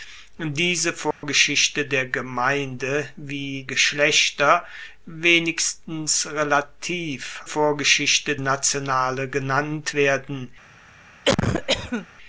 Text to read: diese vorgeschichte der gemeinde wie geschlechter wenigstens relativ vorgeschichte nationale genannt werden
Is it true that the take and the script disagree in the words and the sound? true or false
true